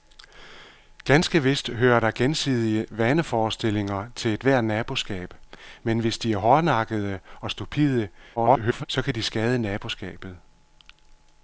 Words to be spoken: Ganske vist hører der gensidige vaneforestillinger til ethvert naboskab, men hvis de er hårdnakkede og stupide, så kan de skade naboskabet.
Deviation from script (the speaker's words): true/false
true